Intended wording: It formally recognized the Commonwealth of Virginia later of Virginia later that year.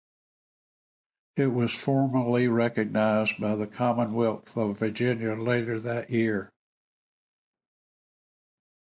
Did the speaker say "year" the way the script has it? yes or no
yes